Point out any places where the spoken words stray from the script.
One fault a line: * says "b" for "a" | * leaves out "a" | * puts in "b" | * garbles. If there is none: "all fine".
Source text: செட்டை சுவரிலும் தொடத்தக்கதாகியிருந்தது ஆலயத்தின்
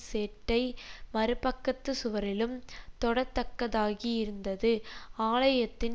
* puts in "மறுபக்கத்துச்"